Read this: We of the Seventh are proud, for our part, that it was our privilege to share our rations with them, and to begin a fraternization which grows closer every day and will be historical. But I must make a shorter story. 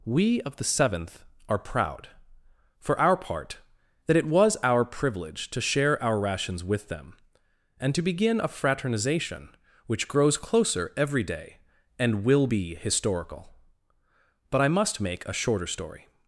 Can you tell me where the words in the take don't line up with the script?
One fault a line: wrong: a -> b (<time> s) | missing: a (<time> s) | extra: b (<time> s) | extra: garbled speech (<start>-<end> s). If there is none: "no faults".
no faults